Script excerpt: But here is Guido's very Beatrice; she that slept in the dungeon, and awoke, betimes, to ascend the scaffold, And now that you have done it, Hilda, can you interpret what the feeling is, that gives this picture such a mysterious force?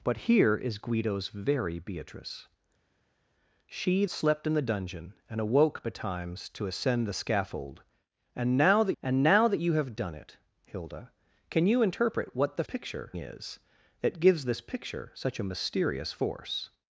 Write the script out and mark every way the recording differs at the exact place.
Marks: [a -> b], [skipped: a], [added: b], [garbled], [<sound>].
But here is Guido's very Beatrice; she [skipped: that] slept in the dungeon, and awoke, betimes, to ascend the scaffold, And now that [added: And now that] you have done it, Hilda, can you interpret what the [feeling -> picture] is, that gives this picture such a mysterious force?